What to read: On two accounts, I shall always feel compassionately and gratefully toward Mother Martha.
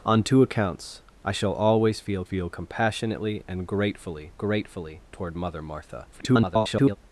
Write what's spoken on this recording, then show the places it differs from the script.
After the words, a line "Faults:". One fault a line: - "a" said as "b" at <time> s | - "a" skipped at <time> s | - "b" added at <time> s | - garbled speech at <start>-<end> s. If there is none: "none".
On two accounts, I shall always feel feel compassionately and gratefully gratefully toward Mother Martha. [garbled]
Faults:
- "feel" added at 2.2 s
- "gratefully" added at 4.4 s
- garbled speech at 6.1-7.0 s